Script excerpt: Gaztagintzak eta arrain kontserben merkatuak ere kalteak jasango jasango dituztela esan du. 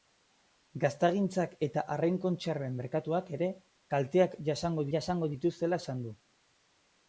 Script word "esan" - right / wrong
right